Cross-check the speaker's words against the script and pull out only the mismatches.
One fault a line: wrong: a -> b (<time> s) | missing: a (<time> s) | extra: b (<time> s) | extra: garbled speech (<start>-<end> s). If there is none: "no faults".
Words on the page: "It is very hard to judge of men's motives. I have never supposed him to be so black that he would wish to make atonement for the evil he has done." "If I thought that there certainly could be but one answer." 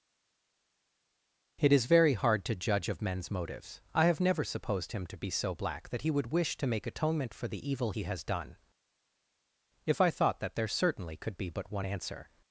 no faults